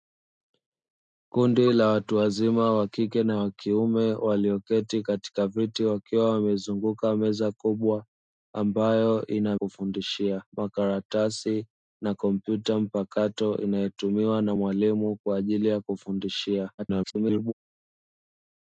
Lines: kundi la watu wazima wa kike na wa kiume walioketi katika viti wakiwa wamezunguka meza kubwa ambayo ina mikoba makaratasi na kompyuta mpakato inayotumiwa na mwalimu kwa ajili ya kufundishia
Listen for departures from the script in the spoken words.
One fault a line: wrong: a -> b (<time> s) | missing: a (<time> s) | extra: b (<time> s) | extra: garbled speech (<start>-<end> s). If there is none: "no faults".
wrong: mikoba -> kufundishia (9.5 s)
extra: garbled speech (16.8-17.5 s)